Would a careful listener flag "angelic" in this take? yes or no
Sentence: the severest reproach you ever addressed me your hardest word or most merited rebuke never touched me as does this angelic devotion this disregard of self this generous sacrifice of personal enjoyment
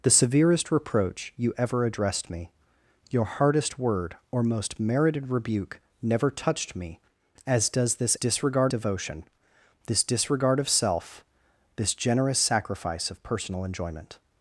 yes